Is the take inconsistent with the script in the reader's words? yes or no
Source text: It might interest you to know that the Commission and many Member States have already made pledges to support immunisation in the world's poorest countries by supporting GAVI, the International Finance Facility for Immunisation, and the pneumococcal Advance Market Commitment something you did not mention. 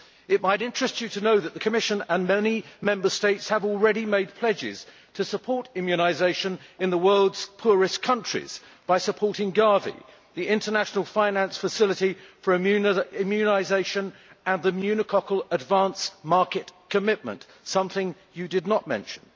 no